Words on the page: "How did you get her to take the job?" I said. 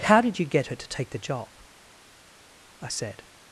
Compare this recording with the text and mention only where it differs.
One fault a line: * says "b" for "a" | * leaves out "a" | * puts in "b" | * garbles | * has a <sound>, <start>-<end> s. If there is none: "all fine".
all fine